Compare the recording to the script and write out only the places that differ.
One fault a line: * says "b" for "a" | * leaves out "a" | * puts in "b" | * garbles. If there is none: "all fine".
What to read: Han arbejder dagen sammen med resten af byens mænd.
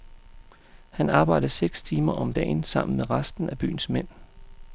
* puts in "seks timer om"